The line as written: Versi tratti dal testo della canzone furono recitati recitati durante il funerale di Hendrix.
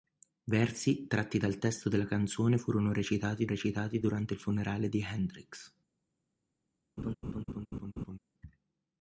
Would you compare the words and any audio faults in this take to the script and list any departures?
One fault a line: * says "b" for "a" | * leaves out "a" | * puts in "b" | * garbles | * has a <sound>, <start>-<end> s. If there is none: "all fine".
* has a laugh, 7.0-8.2 s